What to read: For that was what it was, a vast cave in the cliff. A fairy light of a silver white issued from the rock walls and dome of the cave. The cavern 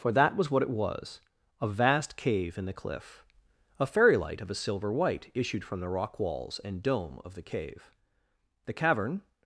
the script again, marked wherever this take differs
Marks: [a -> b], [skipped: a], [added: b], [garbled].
For that was what it was, a vast cave in the cliff. A fairy light of a silver white issued from the rock walls and dome of the cave. The cavern